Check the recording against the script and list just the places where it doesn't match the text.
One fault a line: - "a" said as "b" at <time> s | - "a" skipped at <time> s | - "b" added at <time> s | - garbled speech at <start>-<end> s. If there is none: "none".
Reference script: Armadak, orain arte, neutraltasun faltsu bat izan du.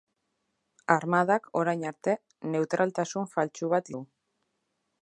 - "izan" skipped at 3.9 s